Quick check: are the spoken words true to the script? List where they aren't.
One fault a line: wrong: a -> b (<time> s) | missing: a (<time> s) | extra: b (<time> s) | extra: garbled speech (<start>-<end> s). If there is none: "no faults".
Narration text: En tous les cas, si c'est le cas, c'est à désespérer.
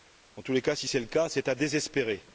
no faults